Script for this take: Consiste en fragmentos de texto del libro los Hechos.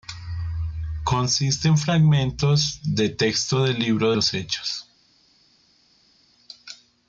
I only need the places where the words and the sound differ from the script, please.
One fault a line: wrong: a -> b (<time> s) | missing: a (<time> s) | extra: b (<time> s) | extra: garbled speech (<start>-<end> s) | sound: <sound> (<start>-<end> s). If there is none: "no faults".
no faults